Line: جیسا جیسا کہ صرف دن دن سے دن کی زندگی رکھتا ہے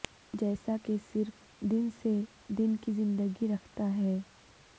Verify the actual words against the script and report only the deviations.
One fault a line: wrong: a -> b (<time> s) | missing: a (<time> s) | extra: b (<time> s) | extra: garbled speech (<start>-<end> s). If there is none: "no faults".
missing: جیسا (0.8 s)
missing: دن (1.9 s)